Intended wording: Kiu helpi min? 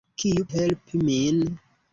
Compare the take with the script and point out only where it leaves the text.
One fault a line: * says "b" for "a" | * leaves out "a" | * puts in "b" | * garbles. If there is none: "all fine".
all fine